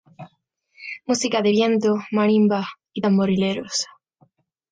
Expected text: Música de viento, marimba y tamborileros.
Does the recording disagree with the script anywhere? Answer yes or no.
no